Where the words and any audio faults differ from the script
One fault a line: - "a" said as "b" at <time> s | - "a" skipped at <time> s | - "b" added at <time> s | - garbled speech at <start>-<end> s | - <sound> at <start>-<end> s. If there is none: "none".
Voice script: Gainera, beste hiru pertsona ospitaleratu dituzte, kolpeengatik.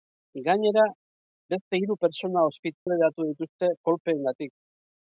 - dropout at 2.8-2.9 s